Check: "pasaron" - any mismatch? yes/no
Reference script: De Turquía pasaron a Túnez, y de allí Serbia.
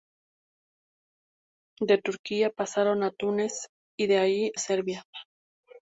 no